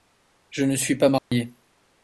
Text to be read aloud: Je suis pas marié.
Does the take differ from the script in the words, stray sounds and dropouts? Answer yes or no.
yes